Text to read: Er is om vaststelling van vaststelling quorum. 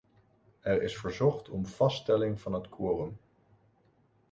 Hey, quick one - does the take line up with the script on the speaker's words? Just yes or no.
no